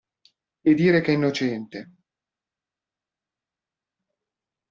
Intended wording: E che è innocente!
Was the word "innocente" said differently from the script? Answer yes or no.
no